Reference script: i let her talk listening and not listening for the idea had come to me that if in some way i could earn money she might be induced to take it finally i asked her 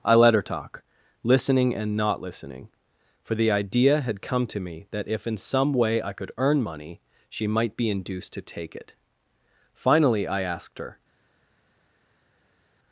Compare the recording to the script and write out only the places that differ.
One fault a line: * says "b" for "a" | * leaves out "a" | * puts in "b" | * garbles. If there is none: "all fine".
all fine